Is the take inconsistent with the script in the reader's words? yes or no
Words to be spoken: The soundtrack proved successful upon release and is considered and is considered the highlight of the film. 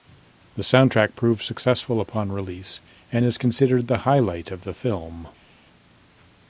yes